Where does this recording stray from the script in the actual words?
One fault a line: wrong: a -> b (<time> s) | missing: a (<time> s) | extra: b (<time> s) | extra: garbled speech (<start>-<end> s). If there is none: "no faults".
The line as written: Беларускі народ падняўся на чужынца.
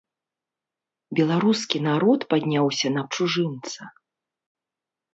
no faults